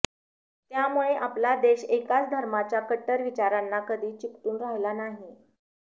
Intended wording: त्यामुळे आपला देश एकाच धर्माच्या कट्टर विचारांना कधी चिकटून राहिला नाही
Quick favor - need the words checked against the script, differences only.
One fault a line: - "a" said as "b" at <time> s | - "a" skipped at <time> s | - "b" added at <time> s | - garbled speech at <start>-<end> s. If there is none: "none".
none